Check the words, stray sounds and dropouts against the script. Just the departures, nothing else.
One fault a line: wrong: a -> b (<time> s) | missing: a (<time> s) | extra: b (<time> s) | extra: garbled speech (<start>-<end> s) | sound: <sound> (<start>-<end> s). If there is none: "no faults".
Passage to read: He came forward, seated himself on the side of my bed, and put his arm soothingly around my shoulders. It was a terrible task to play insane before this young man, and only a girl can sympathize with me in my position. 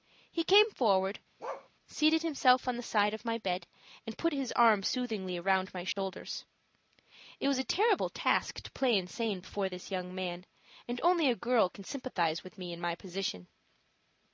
sound: bark (1.4-1.7 s)
sound: dropout (5.9-6.0 s)